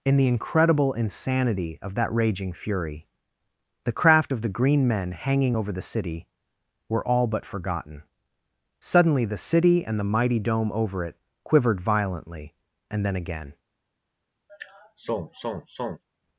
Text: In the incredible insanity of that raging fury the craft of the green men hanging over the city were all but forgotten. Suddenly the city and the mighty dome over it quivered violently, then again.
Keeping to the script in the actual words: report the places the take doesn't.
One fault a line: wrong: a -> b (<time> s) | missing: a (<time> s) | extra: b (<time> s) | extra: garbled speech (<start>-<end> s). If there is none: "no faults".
extra: and (12.9 s)